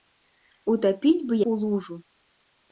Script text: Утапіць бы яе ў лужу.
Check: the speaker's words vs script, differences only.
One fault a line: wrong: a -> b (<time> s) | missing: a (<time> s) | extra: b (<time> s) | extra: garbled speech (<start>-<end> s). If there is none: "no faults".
missing: яе (1.3 s)